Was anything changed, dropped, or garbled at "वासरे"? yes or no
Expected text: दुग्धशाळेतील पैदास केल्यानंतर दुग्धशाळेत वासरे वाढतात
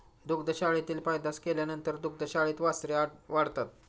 no